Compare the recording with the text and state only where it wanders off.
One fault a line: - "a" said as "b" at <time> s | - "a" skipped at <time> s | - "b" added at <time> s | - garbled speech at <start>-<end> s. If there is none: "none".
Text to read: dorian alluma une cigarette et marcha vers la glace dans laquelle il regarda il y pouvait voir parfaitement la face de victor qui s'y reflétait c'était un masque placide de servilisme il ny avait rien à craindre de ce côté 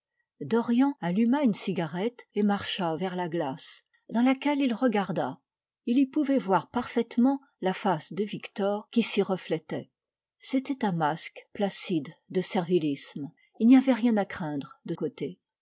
- "ce" skipped at 14.9 s